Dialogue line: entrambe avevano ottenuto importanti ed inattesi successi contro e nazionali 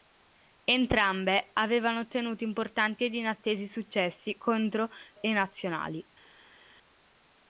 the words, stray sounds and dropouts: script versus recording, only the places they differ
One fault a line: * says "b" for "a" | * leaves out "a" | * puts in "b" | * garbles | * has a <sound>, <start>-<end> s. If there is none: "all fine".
all fine